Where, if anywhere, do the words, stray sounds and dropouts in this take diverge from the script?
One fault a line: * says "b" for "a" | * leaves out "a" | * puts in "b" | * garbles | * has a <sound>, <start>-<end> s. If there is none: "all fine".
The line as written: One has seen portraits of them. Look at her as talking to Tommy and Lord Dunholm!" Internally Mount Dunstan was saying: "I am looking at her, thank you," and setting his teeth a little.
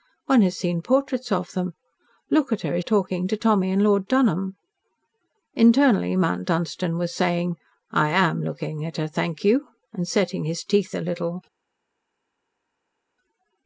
all fine